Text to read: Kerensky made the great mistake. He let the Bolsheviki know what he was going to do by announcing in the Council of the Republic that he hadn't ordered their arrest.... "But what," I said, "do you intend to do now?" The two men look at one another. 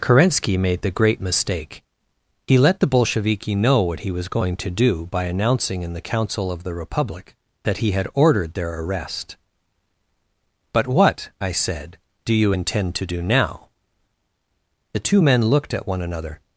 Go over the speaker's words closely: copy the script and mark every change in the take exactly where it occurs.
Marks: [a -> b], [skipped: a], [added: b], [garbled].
Kerensky made the great mistake. He let the Bolsheviki know what he was going to do by announcing in the Council of the Republic that he [hadn't -> had] ordered their arrest.... "But what," I said, "do you intend to do now?" The two men [look -> looked] at one another.